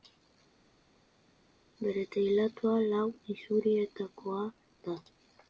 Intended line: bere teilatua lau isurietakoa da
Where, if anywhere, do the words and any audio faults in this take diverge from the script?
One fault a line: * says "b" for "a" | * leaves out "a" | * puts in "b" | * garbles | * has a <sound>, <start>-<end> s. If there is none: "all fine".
all fine